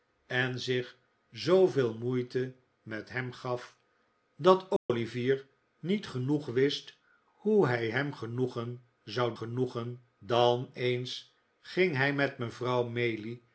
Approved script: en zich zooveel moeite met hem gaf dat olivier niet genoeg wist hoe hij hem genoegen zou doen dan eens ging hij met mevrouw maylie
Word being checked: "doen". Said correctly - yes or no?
no